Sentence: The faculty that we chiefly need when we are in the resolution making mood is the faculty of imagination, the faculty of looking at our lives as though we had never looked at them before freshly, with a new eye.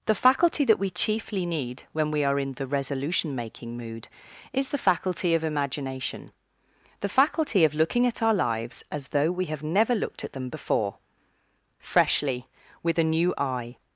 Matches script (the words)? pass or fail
fail